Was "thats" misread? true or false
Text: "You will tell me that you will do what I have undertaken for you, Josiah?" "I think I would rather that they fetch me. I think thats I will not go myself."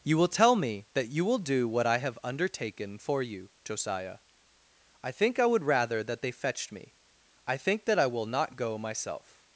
true